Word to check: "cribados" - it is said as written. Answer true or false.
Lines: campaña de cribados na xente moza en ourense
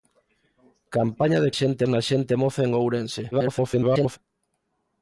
false